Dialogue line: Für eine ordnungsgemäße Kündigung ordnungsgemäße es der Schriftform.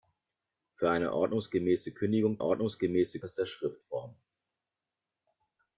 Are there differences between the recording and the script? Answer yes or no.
no